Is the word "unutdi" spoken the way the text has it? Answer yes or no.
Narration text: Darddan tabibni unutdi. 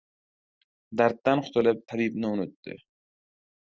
yes